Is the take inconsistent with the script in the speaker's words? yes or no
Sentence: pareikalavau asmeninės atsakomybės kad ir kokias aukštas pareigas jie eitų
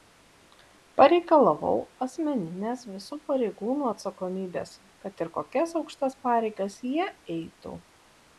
yes